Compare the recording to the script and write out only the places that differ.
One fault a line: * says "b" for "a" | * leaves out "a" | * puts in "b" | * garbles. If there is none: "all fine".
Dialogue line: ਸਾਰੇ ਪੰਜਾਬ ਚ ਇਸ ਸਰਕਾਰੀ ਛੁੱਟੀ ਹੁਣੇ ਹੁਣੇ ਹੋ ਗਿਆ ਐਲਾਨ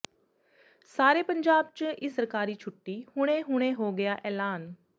all fine